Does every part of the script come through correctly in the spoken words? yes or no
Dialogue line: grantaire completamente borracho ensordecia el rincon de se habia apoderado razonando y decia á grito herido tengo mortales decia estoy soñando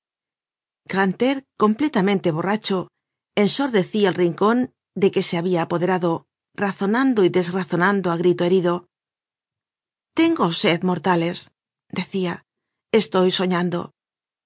no